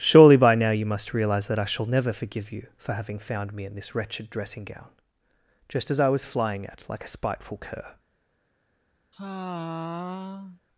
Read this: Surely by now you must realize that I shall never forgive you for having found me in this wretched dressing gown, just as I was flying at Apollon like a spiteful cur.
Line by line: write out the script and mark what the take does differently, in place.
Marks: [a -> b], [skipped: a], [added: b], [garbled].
Surely by now you must realize that I shall never forgive you for having found me in this wretched dressing gown, just as I was flying at [skipped: Apollon] like a spiteful cur.